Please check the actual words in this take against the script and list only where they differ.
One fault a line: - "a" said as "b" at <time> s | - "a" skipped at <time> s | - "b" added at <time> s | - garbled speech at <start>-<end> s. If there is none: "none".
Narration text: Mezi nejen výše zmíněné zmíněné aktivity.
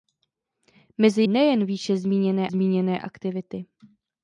none